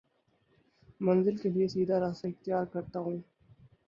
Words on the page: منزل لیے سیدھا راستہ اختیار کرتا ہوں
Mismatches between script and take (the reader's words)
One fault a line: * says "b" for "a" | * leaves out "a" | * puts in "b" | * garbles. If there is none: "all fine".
* puts in "کے"